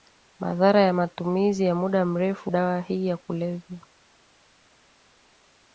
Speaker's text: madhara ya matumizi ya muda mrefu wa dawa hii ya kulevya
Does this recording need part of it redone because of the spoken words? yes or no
yes